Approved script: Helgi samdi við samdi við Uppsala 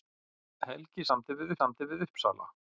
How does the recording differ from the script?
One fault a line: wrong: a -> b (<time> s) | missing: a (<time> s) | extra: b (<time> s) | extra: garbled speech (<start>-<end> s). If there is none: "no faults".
no faults